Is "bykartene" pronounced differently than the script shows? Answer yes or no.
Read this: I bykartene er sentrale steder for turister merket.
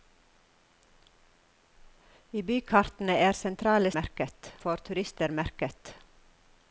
no